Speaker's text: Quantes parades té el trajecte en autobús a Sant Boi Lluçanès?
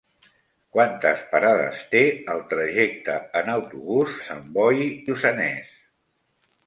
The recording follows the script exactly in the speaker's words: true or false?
true